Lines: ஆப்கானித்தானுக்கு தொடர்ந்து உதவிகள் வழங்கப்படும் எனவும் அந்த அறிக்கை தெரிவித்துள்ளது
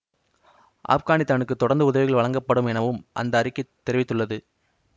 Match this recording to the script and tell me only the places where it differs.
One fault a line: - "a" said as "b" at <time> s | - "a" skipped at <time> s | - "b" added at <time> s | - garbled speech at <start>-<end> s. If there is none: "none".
none